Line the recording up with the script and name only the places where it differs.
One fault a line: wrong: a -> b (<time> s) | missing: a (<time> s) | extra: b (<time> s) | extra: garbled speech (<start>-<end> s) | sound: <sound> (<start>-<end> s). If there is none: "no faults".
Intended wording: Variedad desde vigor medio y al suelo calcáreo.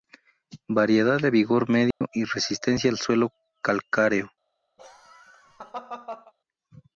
wrong: desde -> de (1.2 s)
sound: dropout (1.9-2.0 s)
extra: resistencia (2.2 s)
sound: laugh (4.8-6.3 s)